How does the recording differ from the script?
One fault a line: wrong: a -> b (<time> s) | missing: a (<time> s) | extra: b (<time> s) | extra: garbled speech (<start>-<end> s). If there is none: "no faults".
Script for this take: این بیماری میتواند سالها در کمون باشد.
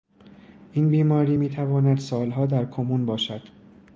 no faults